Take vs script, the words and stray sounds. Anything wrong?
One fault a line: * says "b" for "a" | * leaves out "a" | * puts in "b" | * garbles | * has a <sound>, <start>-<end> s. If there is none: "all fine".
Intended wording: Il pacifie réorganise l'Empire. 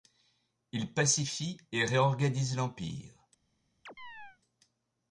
* puts in "et"
* has a chirp, 3.9-4.4 s